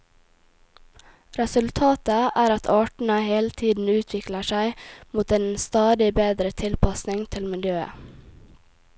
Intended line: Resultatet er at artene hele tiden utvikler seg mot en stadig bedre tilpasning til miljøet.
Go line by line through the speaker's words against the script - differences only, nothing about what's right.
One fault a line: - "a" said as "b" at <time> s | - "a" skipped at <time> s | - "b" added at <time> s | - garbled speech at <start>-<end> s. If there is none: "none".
none